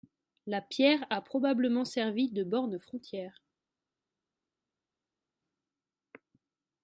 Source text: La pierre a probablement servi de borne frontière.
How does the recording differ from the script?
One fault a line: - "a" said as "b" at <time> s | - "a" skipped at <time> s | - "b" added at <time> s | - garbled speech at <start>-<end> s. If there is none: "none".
none